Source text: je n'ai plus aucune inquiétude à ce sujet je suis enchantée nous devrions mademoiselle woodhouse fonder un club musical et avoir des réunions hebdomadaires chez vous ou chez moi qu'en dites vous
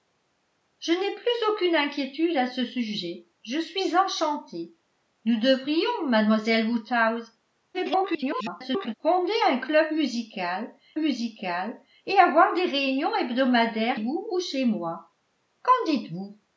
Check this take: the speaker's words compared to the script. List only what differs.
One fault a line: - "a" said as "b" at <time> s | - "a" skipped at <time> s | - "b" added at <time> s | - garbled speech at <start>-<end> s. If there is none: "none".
- garbled speech at 7.7-8.9 s
- "musical" added at 11.0 s
- "chez" skipped at 14.0 s